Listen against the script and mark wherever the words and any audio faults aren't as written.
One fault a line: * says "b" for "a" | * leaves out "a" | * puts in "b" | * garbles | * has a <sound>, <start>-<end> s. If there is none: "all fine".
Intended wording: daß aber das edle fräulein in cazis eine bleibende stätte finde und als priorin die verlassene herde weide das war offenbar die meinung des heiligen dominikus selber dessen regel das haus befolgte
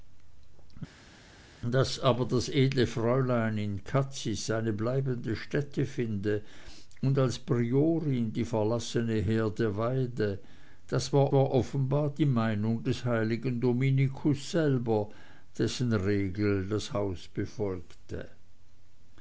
* puts in "war"